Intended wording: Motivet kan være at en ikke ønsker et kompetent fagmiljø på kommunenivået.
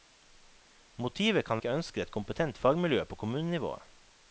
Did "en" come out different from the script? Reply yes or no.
yes